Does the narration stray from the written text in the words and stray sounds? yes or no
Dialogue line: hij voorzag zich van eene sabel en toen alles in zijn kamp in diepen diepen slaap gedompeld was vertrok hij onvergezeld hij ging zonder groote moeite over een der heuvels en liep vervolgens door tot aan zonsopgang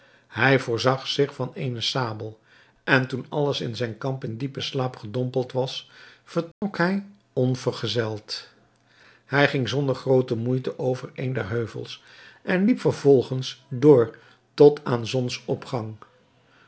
yes